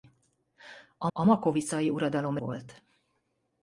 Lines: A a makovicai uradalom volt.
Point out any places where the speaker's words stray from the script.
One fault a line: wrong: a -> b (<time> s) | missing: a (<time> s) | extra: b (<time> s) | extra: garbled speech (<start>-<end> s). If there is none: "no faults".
no faults